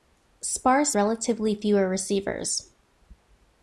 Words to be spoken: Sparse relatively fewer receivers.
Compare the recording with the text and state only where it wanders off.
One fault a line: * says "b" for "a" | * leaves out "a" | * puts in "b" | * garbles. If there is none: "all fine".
all fine